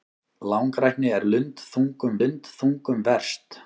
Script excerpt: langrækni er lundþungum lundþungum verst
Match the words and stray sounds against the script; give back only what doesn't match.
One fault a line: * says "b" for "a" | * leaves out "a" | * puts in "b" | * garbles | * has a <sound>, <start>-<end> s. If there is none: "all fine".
all fine